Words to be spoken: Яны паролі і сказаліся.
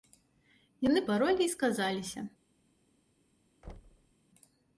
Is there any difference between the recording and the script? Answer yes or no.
no